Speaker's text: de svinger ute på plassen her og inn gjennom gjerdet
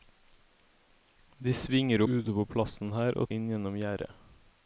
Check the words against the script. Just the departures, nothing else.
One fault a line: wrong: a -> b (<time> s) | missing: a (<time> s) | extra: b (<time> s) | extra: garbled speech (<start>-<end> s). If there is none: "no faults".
no faults